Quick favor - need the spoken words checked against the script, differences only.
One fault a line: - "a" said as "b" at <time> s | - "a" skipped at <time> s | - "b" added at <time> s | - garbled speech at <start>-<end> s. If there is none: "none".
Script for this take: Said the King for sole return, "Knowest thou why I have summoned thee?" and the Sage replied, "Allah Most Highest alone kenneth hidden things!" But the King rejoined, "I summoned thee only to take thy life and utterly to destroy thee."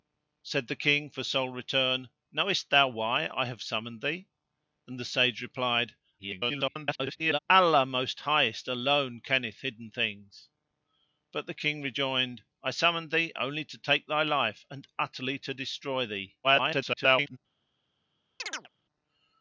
- garbled speech at 6.2-7.4 s
- garbled speech at 16.4-17.4 s